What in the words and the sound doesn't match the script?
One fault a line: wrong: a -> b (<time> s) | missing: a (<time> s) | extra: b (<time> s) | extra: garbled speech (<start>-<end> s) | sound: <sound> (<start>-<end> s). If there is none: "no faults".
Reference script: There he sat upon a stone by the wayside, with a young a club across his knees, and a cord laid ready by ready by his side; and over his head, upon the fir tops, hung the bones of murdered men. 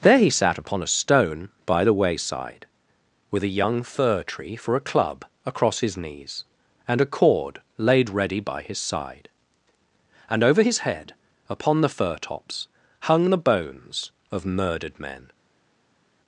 extra: fir tree for (3.8 s)
missing: ready by (8.6 s)